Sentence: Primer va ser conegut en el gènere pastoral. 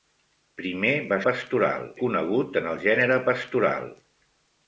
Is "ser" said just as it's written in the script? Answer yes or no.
no